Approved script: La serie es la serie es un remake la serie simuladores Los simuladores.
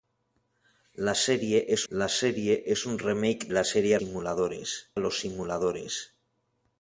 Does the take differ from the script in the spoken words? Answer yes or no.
no